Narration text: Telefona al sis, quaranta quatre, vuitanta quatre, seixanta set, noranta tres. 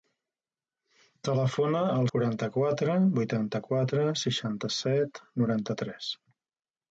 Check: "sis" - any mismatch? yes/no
yes